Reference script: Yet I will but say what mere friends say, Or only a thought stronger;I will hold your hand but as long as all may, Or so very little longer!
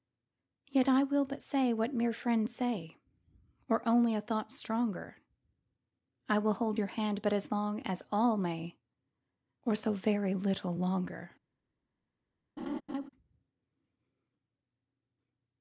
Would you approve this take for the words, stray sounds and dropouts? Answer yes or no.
no